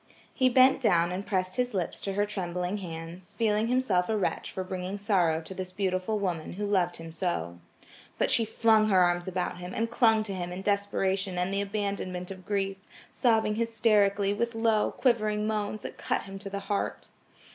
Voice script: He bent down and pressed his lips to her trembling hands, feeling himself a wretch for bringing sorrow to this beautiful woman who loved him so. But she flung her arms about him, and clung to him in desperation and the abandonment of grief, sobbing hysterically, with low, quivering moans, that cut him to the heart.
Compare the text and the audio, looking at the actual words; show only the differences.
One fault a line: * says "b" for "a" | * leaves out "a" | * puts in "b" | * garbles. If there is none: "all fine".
all fine